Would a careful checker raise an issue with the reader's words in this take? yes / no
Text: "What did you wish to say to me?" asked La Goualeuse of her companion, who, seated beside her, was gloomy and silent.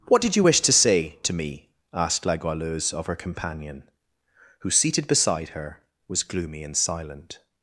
no